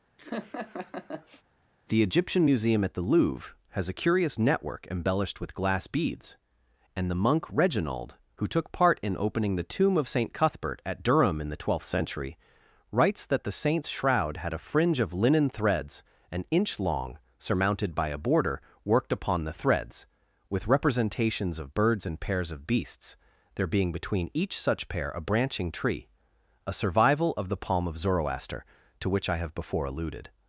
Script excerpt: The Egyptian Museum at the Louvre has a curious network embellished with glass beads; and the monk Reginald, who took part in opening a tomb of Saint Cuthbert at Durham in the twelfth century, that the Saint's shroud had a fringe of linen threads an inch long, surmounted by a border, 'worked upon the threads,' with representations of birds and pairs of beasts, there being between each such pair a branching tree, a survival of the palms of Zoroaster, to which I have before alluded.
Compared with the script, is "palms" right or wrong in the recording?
wrong